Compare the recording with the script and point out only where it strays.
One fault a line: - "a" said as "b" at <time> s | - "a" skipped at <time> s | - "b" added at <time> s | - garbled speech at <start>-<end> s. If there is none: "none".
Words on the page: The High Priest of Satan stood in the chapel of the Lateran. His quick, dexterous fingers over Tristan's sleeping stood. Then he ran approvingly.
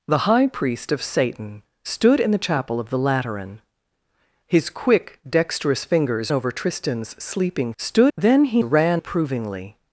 none